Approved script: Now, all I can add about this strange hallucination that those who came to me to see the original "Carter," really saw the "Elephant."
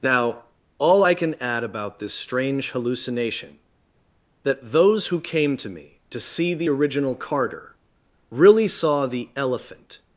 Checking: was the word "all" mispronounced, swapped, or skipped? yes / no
no